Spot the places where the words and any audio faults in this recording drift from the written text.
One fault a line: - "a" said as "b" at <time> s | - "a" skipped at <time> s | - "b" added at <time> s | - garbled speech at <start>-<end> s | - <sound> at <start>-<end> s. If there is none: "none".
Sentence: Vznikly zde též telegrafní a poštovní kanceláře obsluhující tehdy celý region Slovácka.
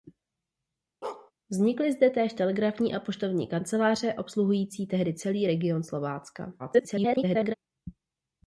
- bark at 1.0-1.3 s
- garbled speech at 6.6-7.5 s